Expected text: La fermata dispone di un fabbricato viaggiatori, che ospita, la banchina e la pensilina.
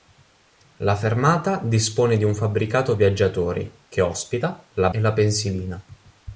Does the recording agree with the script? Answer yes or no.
no